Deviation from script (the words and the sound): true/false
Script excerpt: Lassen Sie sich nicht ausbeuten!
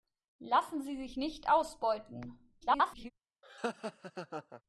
true